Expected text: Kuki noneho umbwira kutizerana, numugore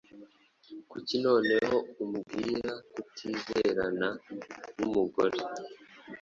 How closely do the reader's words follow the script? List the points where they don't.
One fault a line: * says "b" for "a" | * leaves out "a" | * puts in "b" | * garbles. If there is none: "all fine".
all fine